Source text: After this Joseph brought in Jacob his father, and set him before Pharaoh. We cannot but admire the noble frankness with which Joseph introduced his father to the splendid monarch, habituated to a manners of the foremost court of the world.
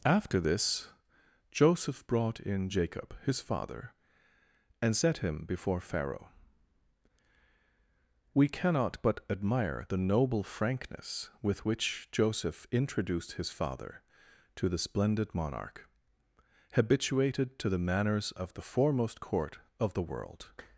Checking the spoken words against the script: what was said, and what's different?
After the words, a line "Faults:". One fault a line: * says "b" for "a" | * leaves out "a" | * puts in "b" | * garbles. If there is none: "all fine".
After this Joseph brought in Jacob his father, and set him before Pharaoh. We cannot but admire the noble frankness with which Joseph introduced his father to the splendid monarch, habituated to the manners of the foremost court of the world.
Faults:
* says "the" for "a"